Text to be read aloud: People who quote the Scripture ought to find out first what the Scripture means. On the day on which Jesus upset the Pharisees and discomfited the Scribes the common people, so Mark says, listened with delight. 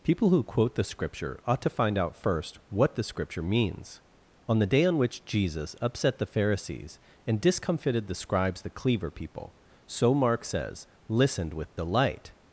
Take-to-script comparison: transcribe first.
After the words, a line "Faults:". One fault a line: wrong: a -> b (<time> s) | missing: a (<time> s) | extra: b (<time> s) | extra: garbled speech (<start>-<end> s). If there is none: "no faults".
People who quote the Scripture ought to find out first what the Scripture means. On the day on which Jesus upset the Pharisees and discomfited the Scribes the cleaver people, so Mark says, listened with delight.
Faults:
wrong: common -> cleaver (8.7 s)